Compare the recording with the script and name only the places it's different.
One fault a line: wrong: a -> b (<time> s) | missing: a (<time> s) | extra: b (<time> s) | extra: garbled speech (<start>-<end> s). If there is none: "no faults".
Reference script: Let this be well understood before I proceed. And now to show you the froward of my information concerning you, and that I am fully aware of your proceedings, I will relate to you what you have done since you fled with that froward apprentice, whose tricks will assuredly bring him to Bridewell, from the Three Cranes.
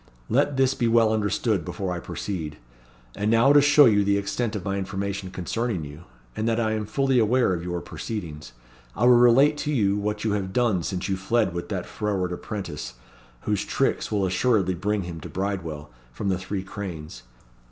wrong: froward -> extent (4.2 s)